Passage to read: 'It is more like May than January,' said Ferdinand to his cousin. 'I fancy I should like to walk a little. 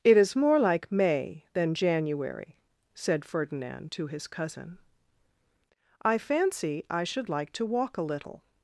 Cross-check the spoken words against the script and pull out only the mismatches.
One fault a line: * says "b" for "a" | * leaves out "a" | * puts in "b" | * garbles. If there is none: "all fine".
all fine